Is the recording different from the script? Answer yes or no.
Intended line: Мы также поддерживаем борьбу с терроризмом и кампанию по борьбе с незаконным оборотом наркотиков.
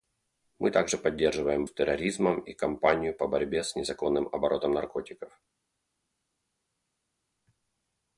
yes